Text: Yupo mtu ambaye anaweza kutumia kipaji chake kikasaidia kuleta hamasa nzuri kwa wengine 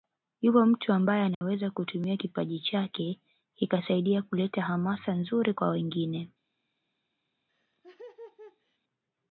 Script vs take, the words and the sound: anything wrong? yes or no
yes